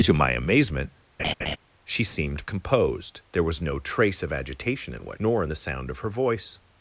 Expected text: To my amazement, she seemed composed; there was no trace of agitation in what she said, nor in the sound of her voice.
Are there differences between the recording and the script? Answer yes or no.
yes